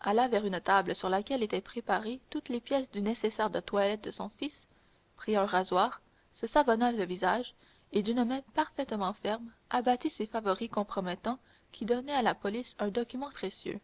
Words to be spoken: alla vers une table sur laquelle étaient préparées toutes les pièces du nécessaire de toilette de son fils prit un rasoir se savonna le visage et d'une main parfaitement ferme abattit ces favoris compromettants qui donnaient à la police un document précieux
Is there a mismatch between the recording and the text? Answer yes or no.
no